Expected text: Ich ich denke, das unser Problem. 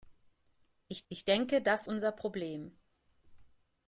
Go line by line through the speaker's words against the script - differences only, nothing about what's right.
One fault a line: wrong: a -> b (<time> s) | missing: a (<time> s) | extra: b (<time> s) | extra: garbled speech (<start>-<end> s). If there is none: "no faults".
no faults